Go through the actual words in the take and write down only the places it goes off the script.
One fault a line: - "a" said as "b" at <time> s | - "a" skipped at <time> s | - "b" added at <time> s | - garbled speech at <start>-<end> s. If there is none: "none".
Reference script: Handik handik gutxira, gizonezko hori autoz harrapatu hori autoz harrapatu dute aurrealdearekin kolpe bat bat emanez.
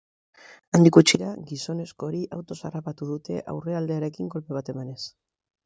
- "handik" skipped at 0.9 s
- "hori autoz harrapatu" skipped at 3.1 s
- "bat" skipped at 4.8 s